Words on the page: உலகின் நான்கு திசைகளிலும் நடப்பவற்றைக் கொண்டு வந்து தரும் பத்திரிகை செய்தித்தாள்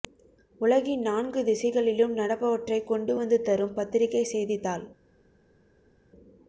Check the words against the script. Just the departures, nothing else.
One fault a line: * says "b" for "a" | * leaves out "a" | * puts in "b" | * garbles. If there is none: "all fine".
all fine